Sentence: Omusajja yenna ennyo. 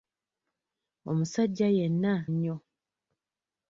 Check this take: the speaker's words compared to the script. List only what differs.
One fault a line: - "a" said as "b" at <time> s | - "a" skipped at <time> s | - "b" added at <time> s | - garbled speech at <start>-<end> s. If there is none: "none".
none